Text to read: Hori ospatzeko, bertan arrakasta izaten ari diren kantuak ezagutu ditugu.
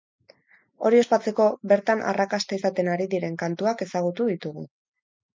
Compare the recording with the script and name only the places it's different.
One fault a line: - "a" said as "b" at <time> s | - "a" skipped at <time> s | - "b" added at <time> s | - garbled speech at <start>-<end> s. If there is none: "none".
none